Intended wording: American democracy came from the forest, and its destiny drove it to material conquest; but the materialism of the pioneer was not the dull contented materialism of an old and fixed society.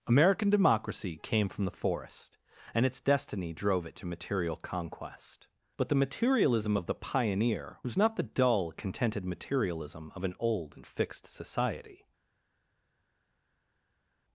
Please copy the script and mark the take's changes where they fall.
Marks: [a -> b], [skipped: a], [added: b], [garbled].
American democracy came from the forest, and its destiny drove it to material conquest; but the materialism of the pioneer was not the dull contented materialism of an old and fixed society.